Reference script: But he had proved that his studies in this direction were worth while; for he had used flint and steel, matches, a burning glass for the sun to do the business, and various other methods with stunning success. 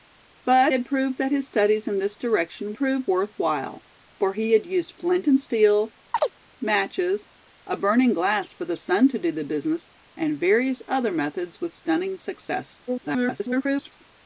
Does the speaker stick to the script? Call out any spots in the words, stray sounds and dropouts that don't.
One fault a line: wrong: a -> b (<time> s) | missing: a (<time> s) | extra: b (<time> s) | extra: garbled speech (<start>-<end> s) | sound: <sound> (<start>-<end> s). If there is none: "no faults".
missing: he (0.7 s)
wrong: were -> proved (2.7 s)
sound: chirp (6.1-6.3 s)
extra: garbled speech (12.9-14.0 s)